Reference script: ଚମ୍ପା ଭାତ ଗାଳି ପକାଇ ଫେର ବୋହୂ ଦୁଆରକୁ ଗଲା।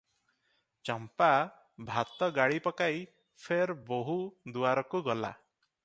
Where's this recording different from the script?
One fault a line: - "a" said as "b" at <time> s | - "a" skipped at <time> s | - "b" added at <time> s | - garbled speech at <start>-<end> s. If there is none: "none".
none